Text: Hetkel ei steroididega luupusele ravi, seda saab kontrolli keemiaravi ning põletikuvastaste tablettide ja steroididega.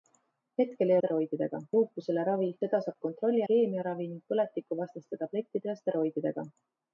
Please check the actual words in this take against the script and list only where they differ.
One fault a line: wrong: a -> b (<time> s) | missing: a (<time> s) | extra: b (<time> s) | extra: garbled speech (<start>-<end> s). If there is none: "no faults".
no faults